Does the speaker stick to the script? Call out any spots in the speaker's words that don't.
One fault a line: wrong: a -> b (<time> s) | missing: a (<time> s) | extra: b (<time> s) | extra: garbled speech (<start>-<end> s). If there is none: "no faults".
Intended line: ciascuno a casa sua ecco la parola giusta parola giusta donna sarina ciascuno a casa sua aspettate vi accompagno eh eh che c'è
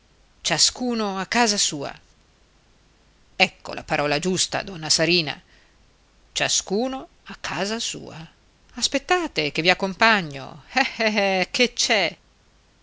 missing: parola giusta (4.6 s)
extra: che (9.5 s)